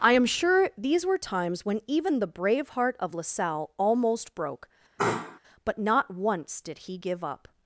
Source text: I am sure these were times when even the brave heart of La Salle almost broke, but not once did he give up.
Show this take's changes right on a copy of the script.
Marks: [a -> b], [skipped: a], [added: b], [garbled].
I am sure these were times when even the brave heart of La Salle almost broke, but not once did he give up.